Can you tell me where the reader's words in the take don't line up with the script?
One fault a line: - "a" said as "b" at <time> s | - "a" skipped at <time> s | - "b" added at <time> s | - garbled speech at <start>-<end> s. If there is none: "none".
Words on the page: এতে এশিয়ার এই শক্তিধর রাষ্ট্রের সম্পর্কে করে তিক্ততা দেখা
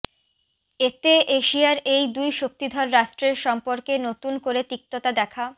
- "দুই" added at 2.1 s
- "নতুন" added at 4.1 s